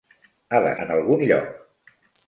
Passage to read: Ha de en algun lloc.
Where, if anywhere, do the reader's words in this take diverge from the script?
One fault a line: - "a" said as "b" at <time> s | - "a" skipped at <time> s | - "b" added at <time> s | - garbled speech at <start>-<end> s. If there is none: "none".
none